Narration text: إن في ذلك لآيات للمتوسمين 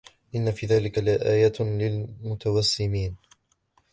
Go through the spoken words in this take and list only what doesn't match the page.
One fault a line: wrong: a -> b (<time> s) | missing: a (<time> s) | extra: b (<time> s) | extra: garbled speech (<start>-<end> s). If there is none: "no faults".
no faults